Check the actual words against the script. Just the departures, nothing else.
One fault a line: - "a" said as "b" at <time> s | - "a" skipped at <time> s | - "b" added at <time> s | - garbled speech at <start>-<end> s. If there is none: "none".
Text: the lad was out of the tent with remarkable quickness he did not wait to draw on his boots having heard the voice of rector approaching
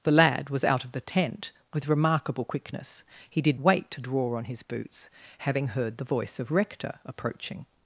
- "not" skipped at 3.6 s